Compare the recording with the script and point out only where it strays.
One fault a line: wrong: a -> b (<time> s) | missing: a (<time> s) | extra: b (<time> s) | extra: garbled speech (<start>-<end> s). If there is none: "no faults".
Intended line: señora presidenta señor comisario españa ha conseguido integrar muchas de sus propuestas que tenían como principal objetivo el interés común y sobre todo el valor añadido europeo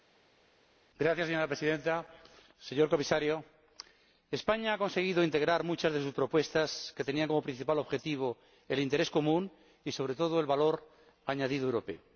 no faults